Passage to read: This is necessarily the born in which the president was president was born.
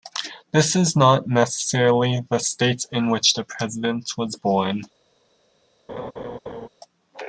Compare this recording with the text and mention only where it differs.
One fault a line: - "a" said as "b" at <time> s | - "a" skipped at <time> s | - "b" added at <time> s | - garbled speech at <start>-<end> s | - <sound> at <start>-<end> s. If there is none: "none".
- "not" added at 0.9 s
- "born" said as "state" at 2.4 s
- "president was" skipped at 4.3 s
- laugh at 5.9-6.7 s